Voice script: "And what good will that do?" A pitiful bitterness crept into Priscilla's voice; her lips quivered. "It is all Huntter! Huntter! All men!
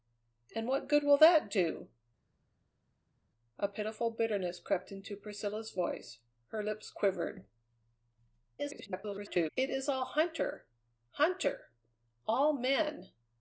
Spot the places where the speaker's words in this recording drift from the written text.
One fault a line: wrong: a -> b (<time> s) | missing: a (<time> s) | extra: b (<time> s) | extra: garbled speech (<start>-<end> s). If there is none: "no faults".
extra: garbled speech (8.6-9.5 s)